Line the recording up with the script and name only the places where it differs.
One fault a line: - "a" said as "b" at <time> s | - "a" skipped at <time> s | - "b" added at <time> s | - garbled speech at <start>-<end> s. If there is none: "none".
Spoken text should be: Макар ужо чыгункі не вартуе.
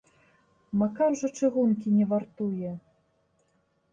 none